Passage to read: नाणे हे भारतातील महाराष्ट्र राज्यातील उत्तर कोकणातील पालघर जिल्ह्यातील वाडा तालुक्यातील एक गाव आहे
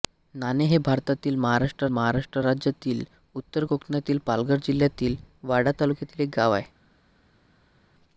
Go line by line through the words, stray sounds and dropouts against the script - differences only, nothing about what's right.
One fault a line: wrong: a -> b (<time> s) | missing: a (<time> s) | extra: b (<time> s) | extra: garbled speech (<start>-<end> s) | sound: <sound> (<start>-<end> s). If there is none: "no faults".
extra: महाराष्ट्र (1.9 s)